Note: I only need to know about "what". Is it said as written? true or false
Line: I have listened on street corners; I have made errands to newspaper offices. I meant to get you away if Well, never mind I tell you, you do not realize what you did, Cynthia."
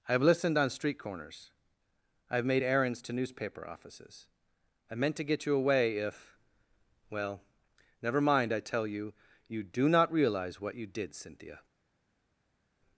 true